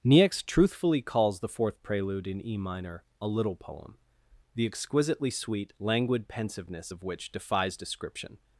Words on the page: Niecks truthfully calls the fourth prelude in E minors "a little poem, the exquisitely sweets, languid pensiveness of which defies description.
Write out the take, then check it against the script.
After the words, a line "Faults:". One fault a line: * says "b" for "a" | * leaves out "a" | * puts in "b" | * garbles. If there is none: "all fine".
Niecks truthfully calls the fourth prelude in E minor "a little poem, the exquisitely sweet, languid pensiveness of which defies description.
Faults:
* says "minor" for "minors"
* says "sweet" for "sweets"